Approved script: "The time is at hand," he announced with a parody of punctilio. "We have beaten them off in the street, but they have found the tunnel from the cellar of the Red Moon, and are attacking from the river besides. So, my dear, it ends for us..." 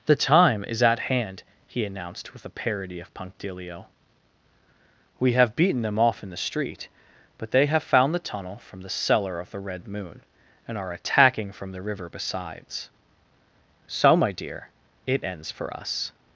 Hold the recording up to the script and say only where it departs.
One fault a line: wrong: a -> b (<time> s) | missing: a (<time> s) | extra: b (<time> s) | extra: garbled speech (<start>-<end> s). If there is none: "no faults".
no faults